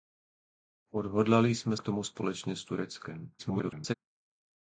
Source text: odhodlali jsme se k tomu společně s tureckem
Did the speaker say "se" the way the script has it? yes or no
no